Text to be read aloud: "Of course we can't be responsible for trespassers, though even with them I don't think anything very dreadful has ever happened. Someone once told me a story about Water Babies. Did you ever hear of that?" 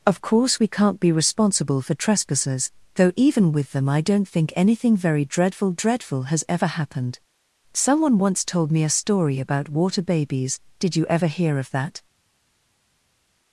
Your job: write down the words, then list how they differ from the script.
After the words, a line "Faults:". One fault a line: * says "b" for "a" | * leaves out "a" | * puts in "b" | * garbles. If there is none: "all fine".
"Of course we can't be responsible for trespassers, though even with them I don't think anything very dreadful dreadful has ever happened. Someone once told me a story about Water Babies. Did you ever hear of that?"
Faults:
* puts in "dreadful"